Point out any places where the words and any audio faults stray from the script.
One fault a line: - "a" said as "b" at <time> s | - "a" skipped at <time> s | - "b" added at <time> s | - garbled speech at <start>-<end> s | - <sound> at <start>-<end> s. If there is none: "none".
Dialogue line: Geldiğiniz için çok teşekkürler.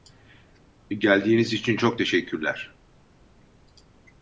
none